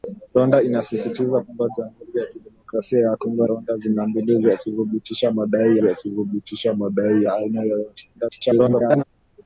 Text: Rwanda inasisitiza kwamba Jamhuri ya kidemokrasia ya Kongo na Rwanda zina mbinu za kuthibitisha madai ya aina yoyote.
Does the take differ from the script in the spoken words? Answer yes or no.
yes